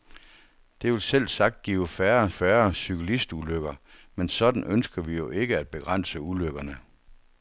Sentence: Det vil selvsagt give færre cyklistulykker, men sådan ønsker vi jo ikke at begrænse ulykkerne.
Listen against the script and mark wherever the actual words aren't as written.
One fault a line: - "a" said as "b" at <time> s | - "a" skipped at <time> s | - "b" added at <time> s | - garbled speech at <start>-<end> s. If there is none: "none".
- "færre" added at 2.3 s